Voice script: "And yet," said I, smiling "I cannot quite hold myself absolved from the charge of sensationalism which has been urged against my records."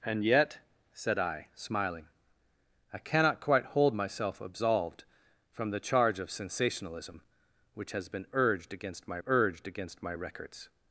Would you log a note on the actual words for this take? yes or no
yes